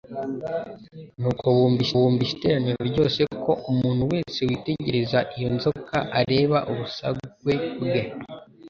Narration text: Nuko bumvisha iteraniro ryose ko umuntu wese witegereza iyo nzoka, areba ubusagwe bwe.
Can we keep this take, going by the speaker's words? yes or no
no